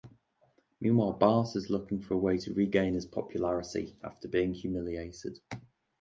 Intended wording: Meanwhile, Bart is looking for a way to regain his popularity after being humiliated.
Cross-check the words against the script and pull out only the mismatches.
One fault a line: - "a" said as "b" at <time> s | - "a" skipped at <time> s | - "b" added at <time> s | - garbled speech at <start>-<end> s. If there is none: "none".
none